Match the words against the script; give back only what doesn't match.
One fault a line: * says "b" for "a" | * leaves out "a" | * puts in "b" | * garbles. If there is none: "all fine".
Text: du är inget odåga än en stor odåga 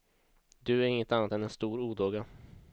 * says "annat" for "odåga"